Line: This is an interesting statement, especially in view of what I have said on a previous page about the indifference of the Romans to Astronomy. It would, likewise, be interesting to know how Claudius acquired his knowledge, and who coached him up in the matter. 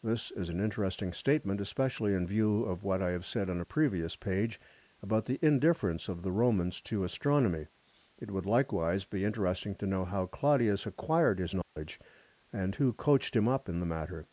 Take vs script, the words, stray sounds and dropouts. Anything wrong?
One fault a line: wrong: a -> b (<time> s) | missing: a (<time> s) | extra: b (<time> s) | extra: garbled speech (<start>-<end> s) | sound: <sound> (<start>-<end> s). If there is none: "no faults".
sound: dropout (11.6-11.8 s)